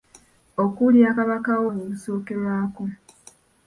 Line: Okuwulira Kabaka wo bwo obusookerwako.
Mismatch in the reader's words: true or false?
false